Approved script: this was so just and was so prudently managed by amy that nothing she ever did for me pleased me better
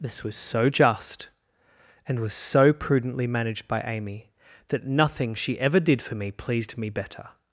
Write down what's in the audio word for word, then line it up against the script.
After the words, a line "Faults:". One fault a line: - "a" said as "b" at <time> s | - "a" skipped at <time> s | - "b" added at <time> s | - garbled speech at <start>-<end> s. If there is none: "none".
this was so just and was so prudently managed by amy that nothing she ever did for me pleased me better
Faults:
none